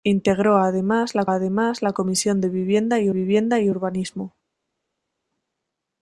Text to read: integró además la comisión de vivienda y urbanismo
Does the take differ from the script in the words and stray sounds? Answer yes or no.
yes